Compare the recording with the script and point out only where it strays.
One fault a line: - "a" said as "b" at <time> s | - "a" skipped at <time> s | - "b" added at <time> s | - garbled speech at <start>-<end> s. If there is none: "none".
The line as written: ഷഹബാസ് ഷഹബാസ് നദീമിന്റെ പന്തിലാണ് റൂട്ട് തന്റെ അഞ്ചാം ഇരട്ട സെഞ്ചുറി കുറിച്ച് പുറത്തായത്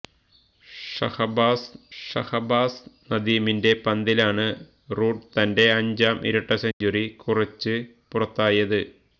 none